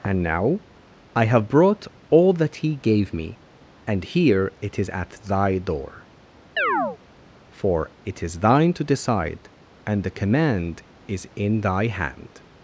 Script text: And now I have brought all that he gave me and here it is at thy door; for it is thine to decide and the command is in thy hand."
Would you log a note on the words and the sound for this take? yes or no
yes